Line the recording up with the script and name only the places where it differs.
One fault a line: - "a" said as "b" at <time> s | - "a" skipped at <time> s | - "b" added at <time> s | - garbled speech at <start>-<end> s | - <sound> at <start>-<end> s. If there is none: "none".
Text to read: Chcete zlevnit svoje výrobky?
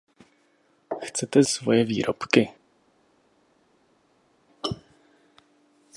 - "zlevnit" skipped at 1.4 s